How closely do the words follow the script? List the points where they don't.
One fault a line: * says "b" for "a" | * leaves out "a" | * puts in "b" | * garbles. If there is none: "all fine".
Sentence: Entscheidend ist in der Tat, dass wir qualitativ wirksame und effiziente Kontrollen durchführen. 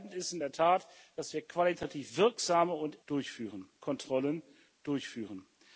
* says "durchführen" for "effiziente"